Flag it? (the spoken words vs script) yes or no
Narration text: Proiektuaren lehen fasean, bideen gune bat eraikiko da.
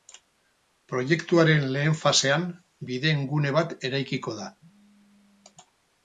no